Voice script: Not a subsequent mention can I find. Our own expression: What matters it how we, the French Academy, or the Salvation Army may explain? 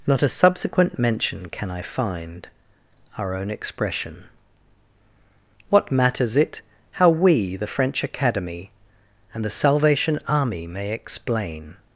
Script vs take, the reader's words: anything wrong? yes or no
yes